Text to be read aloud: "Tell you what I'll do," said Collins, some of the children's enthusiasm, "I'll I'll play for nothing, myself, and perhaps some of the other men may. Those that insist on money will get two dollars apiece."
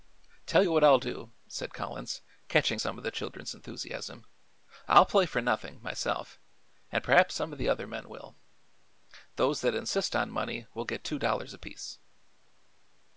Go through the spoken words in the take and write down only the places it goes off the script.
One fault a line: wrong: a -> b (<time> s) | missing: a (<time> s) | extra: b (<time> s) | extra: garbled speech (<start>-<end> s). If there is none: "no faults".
extra: catching (2.5 s)
missing: I'll (5.1 s)
wrong: may -> will (8.1 s)